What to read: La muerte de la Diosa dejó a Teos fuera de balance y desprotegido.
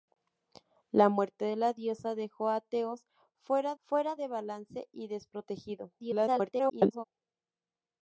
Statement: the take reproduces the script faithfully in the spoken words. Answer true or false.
false